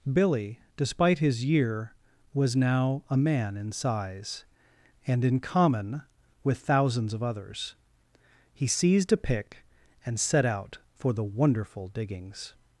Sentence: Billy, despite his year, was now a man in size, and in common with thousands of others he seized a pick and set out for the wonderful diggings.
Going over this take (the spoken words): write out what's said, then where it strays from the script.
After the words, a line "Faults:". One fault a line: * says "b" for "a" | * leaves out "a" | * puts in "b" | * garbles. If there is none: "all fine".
Billy, despite his year, was now a man in size, and in common with thousands of others he seized a pick and set out for the wonderful diggings.
Faults:
all fine